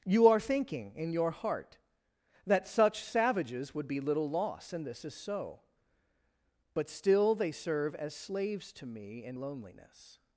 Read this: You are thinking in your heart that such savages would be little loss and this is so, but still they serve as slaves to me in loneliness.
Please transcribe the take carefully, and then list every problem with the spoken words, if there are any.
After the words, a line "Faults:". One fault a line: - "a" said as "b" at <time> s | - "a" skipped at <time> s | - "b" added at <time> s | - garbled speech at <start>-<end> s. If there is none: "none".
You are thinking in your heart that such savages would be little loss and this is so, but still they serve as slaves to me in loneliness.
Faults:
none